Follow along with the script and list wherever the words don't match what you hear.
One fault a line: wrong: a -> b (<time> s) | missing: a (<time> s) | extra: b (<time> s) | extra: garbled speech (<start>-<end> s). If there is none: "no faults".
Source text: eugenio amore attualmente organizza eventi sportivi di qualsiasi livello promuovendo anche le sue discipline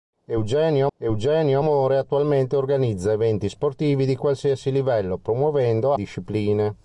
extra: eugenio (1.0 s)
missing: anche le sue (5.9 s)